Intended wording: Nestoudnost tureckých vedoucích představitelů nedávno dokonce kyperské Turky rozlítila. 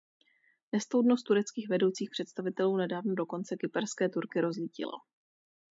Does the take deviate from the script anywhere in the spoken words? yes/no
no